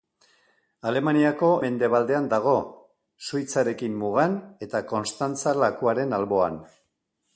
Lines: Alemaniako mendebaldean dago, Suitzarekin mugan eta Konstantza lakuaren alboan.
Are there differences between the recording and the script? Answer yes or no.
no